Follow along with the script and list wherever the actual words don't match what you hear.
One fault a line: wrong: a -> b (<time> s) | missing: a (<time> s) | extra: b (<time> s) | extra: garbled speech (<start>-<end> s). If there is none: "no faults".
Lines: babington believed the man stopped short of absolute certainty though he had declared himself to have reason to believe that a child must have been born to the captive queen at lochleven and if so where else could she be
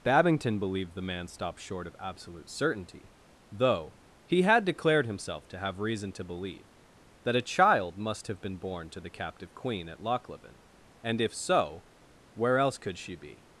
no faults